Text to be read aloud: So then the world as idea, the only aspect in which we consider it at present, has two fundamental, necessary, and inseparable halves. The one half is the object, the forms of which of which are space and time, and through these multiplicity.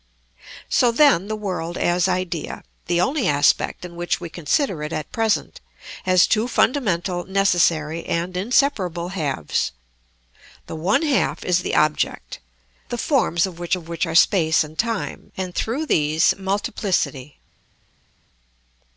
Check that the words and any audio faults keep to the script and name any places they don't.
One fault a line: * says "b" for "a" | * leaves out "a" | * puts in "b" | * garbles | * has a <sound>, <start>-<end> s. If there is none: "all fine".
all fine